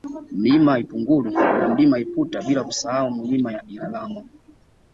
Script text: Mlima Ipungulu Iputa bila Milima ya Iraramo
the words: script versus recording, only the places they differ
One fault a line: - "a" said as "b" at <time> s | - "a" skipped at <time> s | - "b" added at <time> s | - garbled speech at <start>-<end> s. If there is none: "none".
- "na Mlima" added at 1.3 s
- "kusahau" added at 2.6 s